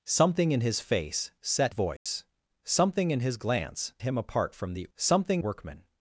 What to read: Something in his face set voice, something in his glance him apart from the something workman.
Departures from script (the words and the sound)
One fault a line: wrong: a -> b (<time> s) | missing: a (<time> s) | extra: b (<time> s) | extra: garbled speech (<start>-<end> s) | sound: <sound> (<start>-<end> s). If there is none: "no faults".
sound: dropout (2.0-2.1 s)